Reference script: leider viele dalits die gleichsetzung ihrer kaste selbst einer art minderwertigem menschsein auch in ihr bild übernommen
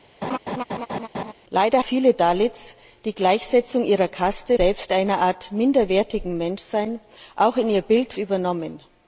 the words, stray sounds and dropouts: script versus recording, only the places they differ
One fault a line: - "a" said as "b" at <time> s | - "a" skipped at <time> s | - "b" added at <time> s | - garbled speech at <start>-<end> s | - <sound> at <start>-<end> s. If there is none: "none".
- laugh at 0.2-1.3 s